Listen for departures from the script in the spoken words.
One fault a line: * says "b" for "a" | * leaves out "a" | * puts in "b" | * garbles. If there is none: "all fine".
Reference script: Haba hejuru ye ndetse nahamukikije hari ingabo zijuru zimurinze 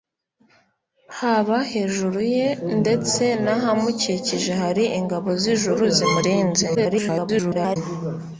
* garbles